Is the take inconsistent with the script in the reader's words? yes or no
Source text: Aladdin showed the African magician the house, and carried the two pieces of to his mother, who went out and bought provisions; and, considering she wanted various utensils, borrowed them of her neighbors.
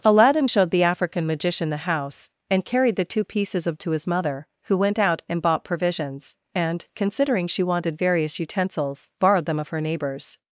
no